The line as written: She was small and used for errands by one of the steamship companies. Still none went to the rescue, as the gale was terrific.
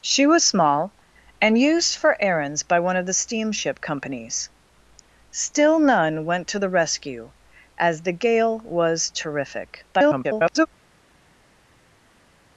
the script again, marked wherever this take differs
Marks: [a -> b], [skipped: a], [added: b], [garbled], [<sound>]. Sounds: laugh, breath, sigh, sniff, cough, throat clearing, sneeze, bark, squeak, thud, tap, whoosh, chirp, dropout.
She was small and used for errands by one of the steamship companies. Still none went to the rescue, as the gale was terrific. [garbled]